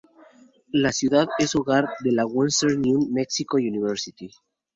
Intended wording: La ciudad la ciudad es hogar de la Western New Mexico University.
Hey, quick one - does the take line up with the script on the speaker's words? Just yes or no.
no